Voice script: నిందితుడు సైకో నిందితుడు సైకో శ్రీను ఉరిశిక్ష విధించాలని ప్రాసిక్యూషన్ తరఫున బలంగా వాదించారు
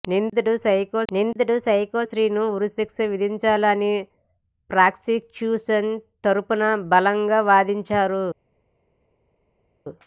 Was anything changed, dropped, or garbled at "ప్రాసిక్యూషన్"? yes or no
no